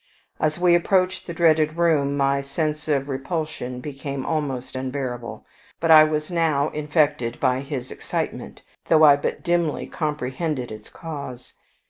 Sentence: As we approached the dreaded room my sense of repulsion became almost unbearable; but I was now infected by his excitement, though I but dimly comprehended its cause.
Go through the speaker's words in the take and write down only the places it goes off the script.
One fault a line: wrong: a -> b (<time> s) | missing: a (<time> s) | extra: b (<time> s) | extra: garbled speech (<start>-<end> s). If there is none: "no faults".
no faults